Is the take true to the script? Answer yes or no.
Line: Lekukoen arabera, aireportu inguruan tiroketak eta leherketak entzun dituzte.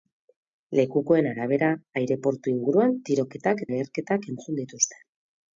no